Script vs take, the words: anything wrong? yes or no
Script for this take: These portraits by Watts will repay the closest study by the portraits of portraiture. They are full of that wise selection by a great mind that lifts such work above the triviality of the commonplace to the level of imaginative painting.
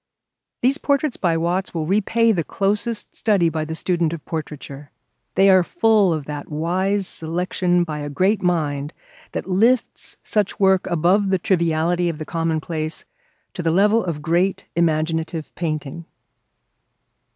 yes